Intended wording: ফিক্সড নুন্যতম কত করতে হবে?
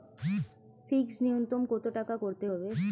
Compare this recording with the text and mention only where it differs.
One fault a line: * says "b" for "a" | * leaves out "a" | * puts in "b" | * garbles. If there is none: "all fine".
* puts in "টাকা"